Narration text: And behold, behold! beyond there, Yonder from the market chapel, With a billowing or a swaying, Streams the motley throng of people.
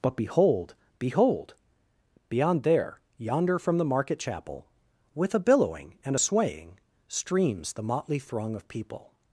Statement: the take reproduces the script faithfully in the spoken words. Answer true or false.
false